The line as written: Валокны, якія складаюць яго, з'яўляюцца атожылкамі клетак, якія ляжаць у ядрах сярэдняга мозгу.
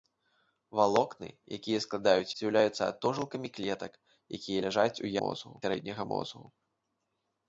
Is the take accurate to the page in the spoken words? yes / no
no